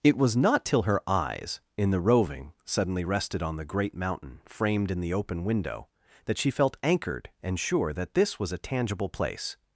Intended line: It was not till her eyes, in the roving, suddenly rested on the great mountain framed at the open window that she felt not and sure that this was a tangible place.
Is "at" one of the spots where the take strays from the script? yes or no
yes